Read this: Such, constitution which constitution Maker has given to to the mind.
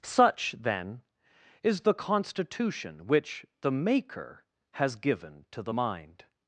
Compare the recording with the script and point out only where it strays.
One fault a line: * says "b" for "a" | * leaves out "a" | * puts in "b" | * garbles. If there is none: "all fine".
* puts in "then is the"
* says "the" for "constitution"
* leaves out "to"